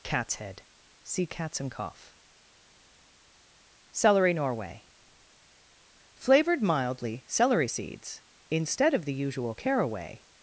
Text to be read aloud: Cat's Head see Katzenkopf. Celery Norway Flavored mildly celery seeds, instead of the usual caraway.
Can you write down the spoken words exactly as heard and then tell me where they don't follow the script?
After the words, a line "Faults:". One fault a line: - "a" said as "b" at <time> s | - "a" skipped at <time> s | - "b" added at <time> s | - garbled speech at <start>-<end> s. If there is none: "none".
Cat's Head see Katzenkopf. Celery Norway Flavored mildly celery seeds, instead of the usual caraway.
Faults:
none